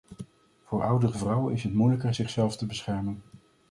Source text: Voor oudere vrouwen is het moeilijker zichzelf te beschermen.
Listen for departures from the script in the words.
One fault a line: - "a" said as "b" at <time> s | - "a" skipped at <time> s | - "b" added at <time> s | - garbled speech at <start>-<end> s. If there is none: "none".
none